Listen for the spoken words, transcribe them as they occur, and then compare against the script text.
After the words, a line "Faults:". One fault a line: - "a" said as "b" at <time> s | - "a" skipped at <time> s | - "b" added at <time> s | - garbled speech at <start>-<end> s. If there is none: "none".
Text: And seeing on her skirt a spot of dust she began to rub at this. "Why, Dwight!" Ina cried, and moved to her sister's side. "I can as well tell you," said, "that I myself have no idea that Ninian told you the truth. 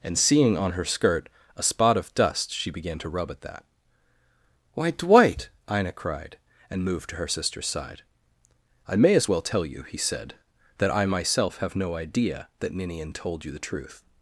And seeing on her skirt a spot of dust she began to rub at that. "Why, Dwight!" Ina cried, and moved to her sister's side. "I may as well tell you," he said, "that I myself have no idea that Ninian told you the truth.
Faults:
- "this" said as "that" at 3.4 s
- "can" said as "may" at 9.0 s
- "he" added at 9.8 s